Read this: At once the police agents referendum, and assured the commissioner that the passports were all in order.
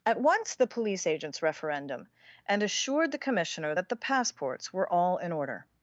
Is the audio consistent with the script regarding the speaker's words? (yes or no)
yes